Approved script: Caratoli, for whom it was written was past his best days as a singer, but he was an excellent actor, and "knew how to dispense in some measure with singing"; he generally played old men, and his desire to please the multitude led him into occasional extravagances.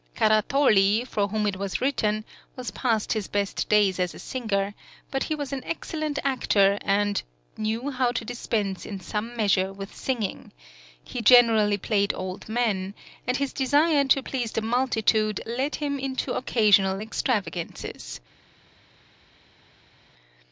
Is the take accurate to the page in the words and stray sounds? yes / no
yes